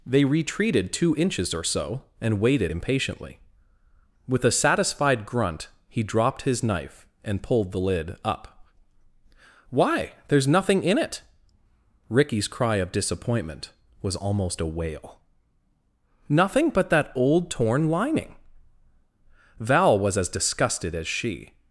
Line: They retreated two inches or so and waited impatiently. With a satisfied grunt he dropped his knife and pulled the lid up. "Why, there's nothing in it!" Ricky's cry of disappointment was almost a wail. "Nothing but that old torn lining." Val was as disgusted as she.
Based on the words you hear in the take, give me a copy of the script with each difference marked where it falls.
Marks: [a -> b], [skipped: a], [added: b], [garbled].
They retreated two inches or so and waited impatiently. With a satisfied grunt he dropped his knife and pulled the lid up. "Why, there's nothing in it!" Ricky's cry of disappointment was almost a wail. "Nothing but that old torn lining." Val was as disgusted as she.